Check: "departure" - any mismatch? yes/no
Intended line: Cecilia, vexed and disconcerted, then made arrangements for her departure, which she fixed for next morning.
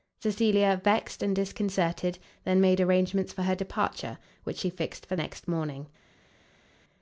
no